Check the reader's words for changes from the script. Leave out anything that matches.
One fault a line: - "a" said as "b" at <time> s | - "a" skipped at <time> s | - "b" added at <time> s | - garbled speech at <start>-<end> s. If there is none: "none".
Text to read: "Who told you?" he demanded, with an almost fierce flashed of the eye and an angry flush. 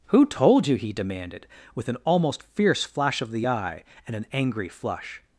- "flashed" said as "flash" at 2.8 s